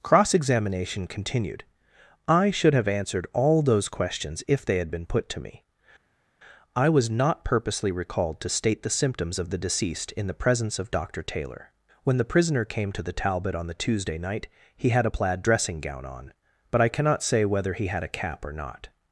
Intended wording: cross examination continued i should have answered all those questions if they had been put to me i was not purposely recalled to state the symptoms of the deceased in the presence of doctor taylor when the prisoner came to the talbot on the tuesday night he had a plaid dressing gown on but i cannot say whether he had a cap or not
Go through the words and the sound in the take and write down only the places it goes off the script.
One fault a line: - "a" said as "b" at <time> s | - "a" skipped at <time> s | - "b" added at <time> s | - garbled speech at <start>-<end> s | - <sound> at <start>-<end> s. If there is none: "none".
none